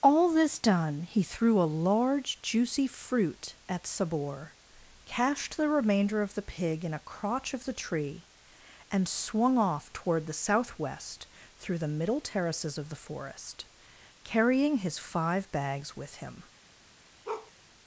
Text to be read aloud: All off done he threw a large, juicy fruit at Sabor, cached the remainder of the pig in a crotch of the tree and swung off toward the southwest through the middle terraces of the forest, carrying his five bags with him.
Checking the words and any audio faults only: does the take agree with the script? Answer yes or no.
no